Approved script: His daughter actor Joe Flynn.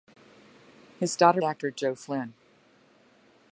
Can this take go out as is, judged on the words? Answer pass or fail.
pass